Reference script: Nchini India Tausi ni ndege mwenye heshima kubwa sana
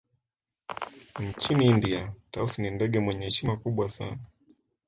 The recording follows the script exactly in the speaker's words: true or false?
true